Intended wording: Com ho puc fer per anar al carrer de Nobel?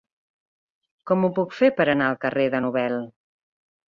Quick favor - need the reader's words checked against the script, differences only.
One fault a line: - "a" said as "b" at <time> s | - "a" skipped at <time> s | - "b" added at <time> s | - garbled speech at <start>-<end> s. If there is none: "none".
none